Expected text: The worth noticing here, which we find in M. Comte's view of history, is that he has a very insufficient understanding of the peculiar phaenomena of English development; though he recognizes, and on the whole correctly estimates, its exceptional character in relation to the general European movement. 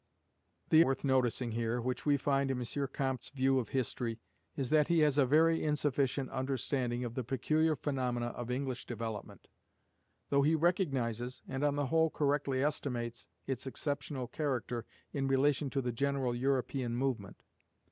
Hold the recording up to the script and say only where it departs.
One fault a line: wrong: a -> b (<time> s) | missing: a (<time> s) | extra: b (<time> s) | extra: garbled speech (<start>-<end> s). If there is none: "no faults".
no faults